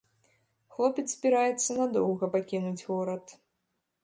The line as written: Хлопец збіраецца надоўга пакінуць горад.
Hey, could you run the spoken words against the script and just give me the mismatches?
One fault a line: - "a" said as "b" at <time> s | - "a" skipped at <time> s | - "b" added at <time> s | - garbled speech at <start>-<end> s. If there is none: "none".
none